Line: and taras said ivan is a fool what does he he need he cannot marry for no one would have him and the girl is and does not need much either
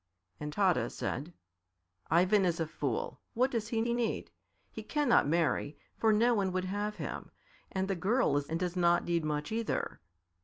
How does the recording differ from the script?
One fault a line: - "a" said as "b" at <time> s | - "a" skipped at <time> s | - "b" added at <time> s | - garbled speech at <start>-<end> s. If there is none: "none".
none